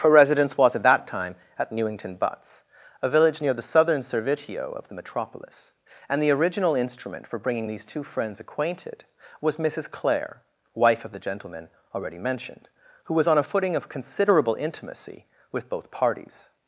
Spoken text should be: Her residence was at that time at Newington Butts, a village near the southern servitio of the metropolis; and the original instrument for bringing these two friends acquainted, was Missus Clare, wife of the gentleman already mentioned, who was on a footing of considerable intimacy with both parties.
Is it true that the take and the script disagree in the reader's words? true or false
false